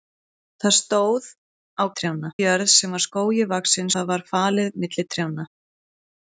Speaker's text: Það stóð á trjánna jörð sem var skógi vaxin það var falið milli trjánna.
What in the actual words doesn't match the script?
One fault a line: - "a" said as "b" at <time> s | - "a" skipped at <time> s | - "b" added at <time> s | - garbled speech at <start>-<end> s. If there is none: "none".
none